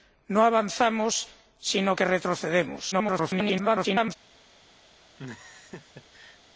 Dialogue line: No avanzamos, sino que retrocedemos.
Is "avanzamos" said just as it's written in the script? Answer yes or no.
yes